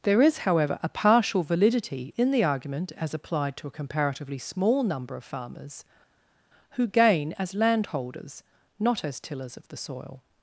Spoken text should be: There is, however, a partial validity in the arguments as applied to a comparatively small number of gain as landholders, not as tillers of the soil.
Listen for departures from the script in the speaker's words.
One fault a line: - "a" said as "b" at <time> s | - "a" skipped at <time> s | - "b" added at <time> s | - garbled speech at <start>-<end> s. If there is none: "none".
- "arguments" said as "argument" at 2.4 s
- "farmers who" added at 5.2 s